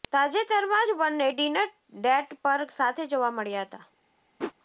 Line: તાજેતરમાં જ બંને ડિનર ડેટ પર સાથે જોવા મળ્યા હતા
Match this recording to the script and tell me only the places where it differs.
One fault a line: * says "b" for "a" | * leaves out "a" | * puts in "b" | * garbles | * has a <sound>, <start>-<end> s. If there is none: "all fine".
* has a whoosh, 4.4-4.5 s